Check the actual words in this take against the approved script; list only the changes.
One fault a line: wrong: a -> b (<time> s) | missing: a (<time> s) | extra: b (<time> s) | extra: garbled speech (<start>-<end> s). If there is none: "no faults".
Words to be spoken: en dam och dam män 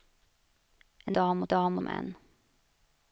no faults